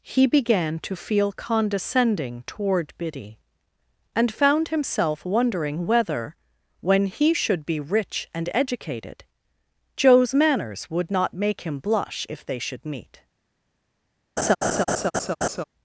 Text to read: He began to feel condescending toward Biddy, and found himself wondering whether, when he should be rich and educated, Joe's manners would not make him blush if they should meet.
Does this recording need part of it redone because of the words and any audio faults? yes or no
yes